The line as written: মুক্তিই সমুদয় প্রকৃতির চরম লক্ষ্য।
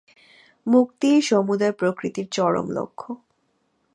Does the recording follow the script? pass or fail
pass